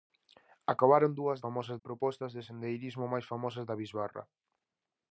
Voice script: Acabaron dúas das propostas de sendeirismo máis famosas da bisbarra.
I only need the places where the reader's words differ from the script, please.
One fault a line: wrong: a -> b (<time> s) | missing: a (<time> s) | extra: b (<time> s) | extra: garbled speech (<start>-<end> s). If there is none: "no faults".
wrong: das -> famosas (1.4 s)